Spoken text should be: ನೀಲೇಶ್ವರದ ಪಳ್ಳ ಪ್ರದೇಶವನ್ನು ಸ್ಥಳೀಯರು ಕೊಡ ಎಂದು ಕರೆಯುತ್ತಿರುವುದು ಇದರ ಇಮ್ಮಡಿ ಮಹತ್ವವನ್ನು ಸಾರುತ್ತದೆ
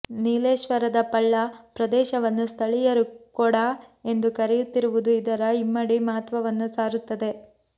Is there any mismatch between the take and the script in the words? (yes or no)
no